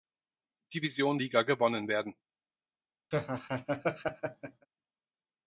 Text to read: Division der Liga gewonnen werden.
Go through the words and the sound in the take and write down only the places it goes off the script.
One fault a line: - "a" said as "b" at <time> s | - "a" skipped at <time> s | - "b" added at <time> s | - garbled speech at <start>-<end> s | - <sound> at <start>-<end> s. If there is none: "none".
- "der" skipped at 1.2 s
- laugh at 3.1-4.7 s